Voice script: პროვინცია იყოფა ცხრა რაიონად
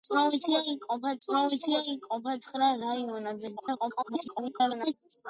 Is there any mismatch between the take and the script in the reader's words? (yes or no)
yes